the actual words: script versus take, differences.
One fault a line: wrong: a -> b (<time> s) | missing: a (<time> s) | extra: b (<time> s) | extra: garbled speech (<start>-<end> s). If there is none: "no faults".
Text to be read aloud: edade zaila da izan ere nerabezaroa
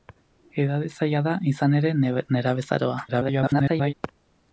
extra: garbled speech (3.1-3.9 s)